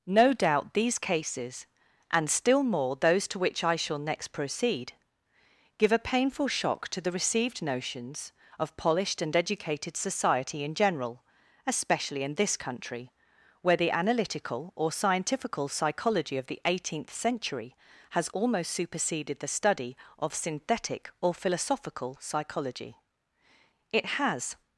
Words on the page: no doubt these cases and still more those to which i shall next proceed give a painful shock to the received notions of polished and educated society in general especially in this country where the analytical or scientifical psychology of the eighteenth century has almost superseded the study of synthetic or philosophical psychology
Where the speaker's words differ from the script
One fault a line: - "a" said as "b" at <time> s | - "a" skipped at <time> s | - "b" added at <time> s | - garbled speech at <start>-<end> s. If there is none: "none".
- "it has" added at 23.9 s